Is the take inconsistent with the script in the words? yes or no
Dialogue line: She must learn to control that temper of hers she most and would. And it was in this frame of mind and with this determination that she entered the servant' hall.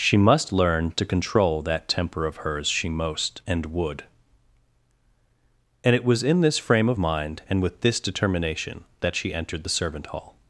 no